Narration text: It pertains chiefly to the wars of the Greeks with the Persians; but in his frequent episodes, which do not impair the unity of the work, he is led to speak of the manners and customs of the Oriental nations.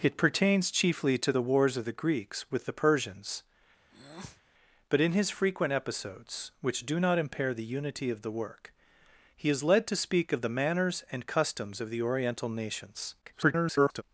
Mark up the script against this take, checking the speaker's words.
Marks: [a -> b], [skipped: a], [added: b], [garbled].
It pertains chiefly to the wars of the Greeks with the Persians; but in his frequent episodes, which do not impair the unity of the work, he is led to speak of the manners and customs of the Oriental nations. [garbled]